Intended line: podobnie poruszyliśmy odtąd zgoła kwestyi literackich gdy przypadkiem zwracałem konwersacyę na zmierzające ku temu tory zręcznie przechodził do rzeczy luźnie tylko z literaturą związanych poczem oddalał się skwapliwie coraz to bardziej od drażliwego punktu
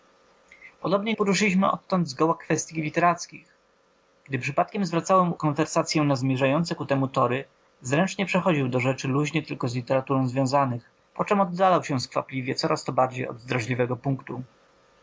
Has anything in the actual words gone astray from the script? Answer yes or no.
no